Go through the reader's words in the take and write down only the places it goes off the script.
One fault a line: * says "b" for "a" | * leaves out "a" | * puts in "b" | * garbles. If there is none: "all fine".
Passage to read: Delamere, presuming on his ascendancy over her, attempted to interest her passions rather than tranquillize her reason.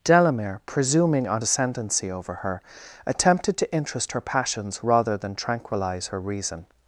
* leaves out "his"